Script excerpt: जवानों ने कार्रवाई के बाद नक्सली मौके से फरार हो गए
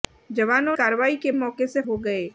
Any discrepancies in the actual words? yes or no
yes